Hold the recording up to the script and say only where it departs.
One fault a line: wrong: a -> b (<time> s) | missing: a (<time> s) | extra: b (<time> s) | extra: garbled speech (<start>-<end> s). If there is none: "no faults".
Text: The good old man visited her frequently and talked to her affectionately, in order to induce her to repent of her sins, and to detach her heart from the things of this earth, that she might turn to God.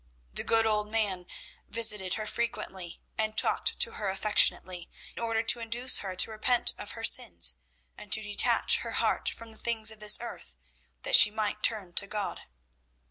missing: in (4.9 s)